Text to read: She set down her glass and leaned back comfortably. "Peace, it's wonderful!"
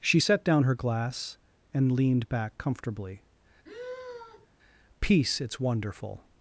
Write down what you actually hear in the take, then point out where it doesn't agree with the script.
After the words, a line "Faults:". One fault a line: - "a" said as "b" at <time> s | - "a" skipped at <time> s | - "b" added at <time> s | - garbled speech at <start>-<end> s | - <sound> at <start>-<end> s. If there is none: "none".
She set down her glass and leaned back comfortably. "Peace, it's wonderful!"
Faults:
- sigh at 3.6-4.5 s